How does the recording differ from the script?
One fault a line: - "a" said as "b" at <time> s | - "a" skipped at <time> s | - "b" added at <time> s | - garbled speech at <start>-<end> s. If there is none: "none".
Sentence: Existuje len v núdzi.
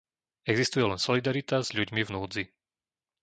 - "solidarita s ľuďmi" added at 1.0 s